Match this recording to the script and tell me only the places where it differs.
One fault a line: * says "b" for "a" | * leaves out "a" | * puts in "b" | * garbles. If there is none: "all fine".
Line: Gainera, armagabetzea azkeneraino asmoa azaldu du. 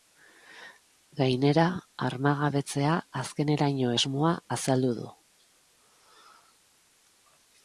all fine